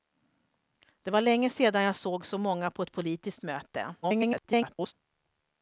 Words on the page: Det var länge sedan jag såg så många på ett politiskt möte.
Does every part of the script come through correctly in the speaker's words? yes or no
no